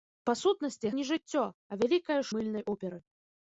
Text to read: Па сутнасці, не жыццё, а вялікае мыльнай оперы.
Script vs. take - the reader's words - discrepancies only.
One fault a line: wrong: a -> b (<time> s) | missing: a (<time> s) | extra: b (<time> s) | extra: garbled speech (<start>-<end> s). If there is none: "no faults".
no faults